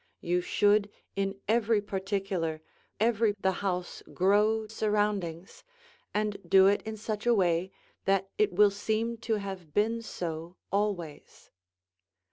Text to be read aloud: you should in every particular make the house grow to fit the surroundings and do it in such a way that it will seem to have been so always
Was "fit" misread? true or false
true